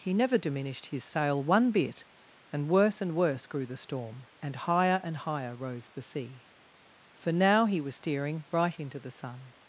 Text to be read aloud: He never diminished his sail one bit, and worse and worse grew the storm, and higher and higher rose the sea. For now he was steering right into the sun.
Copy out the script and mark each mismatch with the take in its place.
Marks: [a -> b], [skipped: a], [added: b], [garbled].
He never diminished his sail one bit, and worse and worse grew the storm, and higher and higher rose the sea. For now he was steering right into the sun.